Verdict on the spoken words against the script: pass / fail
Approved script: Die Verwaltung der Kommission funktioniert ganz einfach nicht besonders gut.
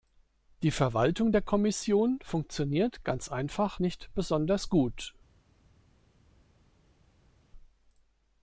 pass